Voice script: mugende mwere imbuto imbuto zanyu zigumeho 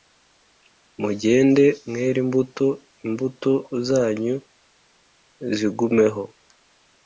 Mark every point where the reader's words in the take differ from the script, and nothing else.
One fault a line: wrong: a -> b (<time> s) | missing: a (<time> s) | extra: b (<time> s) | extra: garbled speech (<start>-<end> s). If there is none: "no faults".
no faults